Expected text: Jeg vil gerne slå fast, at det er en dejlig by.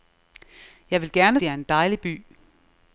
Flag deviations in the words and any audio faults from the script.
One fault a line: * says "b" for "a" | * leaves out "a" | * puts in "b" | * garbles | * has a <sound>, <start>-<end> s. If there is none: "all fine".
* leaves out "slå fast at"